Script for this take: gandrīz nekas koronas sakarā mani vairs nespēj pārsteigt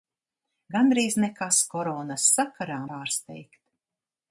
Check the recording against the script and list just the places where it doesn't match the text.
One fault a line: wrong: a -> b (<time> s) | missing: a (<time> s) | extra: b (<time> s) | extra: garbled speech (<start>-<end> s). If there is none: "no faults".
missing: mani vairs nespēj (2.8 s)